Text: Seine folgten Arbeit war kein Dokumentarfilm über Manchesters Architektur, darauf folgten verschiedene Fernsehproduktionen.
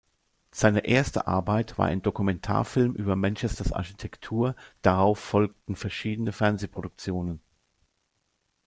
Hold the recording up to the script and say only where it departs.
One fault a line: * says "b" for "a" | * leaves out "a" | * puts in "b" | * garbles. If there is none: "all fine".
* says "erste" for "folgten"
* says "ein" for "kein"